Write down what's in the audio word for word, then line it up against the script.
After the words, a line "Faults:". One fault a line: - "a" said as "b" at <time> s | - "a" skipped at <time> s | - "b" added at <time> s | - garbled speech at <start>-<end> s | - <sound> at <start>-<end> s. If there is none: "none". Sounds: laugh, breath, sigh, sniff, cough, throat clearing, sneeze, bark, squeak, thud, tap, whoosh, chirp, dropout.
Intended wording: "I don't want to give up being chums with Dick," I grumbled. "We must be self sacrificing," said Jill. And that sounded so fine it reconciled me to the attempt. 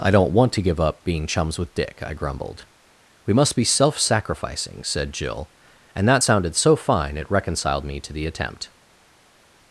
"I don't want to give up being chums with Dick," I grumbled. "We must be self sacrificing," said Jill. And that sounded so fine it reconciled me to the attempt.
Faults:
none